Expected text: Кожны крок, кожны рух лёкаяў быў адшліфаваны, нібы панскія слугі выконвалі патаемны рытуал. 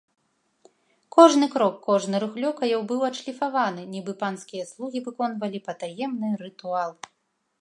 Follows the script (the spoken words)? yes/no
yes